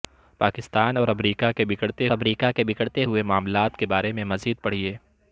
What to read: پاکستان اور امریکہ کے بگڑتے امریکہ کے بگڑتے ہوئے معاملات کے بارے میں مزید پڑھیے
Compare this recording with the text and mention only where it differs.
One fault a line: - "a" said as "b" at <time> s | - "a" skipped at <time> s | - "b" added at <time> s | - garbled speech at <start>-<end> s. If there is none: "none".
none